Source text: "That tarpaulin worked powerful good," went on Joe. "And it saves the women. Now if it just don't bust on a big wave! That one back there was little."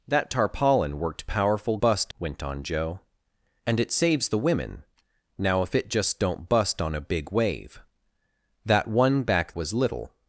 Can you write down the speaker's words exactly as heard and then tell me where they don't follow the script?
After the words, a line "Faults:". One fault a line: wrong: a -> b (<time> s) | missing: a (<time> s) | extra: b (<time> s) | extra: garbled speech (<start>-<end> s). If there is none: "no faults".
"That tarpaulin worked powerful bust," went on Joe. "And it saves the women. Now if it just don't bust on a big wave! That one back was little."
Faults:
wrong: good -> bust (1.8 s)
missing: there (9.5 s)